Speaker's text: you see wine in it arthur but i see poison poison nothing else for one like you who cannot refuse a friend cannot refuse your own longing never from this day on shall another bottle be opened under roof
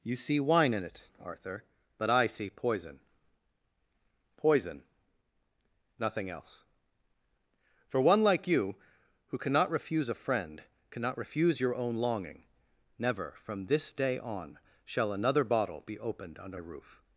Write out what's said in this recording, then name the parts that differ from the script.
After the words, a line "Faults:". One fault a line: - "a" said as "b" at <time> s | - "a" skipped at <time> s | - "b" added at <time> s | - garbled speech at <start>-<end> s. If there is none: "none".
you see wine in it arthur but i see poison poison nothing else for one like you who cannot refuse a friend cannot refuse your own longing never from this day on shall another bottle be opened under roof
Faults:
none